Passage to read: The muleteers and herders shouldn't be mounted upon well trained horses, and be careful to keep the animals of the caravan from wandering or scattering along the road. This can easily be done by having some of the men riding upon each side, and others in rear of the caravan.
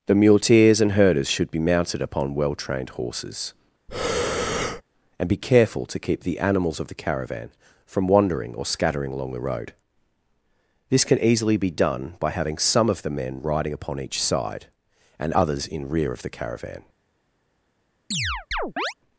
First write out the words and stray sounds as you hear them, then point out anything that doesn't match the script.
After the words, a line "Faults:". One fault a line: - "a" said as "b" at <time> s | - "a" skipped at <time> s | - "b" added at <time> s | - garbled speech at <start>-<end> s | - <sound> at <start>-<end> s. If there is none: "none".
The muleteers and herders should be mounted upon well trained horses, and be careful to keep the animals of the caravan from wandering or scattering along the road. This can easily be done by having some of the men riding upon each side, and others in rear of the caravan.
Faults:
- "shouldn't" said as "should" at 1.3 s
- breath at 3.9-4.8 s
- chirp at 18.1-18.9 s